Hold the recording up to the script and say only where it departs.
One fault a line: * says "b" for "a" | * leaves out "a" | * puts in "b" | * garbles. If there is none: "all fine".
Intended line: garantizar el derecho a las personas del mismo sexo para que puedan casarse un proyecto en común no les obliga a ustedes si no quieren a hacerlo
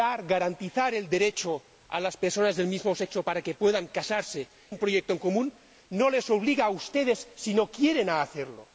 all fine